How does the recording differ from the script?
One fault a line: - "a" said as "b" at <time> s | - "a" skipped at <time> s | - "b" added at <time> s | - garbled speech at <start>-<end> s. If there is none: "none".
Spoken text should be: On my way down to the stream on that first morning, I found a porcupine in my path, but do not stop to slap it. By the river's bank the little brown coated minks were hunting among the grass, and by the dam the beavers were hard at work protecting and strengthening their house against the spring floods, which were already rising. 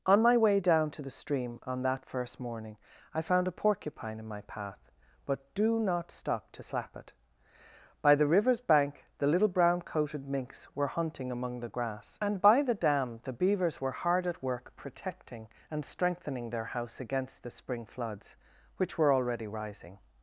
none